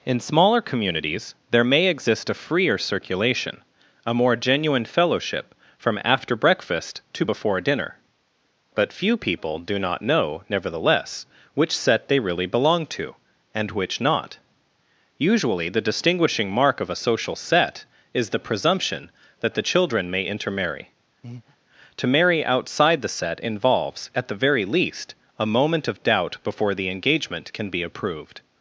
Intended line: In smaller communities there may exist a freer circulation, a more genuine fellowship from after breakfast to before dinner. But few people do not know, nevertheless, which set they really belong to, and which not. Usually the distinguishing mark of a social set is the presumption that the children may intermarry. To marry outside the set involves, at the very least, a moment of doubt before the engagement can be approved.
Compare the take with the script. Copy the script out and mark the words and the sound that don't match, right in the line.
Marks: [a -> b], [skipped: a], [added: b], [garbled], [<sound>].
In smaller communities there may exist a freer circulation, a more genuine fellowship from after breakfast to before dinner. But few people do not know, nevertheless, which set they really belong to, and which not. Usually the distinguishing mark of a social set is the presumption that the children may intermarry. [breath] To marry outside the set involves, at the very least, a moment of doubt before the engagement can be approved.